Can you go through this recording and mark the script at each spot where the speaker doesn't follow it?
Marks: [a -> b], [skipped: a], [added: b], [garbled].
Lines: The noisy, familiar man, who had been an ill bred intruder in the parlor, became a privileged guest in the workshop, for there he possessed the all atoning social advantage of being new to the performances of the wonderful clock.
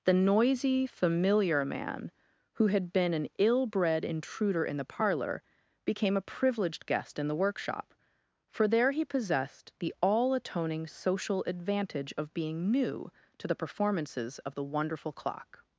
The noisy, familiar man, who had been an ill bred intruder in the parlor, became a privileged guest in the workshop, for there he possessed the all atoning social advantage of being new to the performances of the wonderful clock.